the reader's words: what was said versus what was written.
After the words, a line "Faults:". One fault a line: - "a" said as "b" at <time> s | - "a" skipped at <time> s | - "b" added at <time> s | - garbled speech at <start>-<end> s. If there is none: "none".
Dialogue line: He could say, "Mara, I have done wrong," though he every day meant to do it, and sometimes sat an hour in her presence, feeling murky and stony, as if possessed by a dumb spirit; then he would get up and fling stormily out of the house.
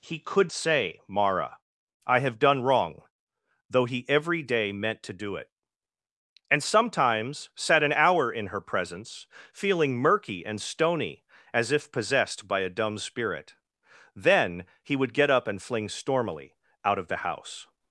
He could say, "Mara, I have done wrong," though he every day meant to do it, and sometimes sat an hour in her presence, feeling murky and stony, as if possessed by a dumb spirit; then he would get up and fling stormily out of the house.
Faults:
none